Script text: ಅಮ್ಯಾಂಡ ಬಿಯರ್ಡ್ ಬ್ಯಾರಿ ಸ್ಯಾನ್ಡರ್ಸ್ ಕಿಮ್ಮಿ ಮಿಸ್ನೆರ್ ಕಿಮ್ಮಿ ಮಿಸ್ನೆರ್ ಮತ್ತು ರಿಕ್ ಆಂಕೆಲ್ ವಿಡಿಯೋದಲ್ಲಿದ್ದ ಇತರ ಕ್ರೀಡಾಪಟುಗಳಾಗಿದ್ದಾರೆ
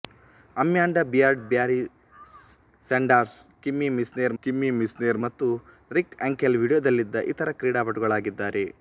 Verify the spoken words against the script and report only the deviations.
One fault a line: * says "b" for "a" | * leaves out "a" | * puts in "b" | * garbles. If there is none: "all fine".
all fine